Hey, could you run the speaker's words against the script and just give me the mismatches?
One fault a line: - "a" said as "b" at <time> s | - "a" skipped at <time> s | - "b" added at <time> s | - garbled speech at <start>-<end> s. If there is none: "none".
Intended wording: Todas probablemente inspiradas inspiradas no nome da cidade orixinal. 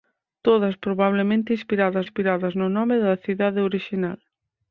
none